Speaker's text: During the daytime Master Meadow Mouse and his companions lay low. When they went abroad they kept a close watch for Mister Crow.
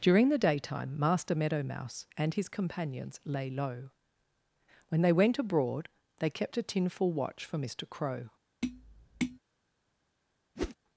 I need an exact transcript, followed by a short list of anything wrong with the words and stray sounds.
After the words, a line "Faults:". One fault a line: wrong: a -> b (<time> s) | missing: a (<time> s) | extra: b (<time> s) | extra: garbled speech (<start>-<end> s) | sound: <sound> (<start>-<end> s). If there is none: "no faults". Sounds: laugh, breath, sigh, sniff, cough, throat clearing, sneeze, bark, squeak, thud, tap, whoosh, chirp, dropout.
During the daytime Master Meadow Mouse and his companions lay low. When they went abroad they kept a tinful watch for Mister Crow.
Faults:
wrong: close -> tinful (6.6 s)
sound: tap (8.6-9.4 s)
sound: whoosh (10.6-10.8 s)